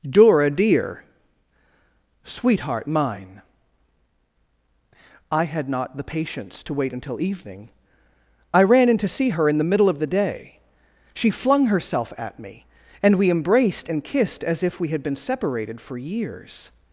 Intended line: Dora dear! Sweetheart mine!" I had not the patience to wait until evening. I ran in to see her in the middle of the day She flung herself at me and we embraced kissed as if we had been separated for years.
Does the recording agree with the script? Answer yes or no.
no